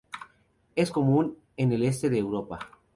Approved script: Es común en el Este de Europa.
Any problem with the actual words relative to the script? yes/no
no